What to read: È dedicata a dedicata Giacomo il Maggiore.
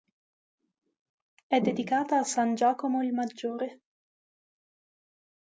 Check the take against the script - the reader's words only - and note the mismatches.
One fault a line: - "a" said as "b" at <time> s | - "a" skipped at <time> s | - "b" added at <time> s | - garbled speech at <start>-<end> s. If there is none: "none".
- "dedicata" said as "san" at 2.2 s